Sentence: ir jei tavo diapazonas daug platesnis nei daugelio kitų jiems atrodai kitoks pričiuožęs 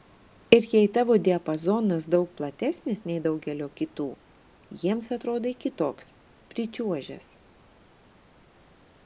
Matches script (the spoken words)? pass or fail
pass